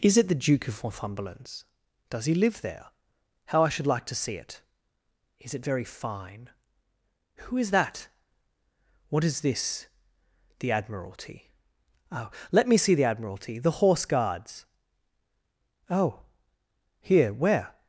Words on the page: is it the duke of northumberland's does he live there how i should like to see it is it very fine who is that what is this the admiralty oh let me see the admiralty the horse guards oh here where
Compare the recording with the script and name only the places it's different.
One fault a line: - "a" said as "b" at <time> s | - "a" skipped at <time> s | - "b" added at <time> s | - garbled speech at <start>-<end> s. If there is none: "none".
none